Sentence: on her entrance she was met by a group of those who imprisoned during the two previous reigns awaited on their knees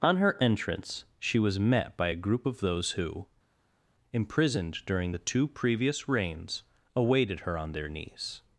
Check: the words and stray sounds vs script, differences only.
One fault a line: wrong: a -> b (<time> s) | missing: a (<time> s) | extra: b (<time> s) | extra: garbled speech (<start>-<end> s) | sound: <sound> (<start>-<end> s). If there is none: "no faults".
extra: her (7.4 s)